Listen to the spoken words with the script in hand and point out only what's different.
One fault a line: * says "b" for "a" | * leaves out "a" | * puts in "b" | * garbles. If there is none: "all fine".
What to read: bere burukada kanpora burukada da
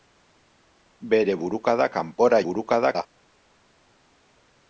all fine